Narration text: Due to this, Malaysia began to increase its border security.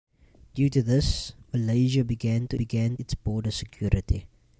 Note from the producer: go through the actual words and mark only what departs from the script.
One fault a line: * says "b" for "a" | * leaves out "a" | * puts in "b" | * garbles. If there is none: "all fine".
* says "began" for "increase"